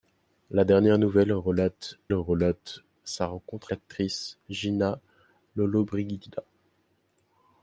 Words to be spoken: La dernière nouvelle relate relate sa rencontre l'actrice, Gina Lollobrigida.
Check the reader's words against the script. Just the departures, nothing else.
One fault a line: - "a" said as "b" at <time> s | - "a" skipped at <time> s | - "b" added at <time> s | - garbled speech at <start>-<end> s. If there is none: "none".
none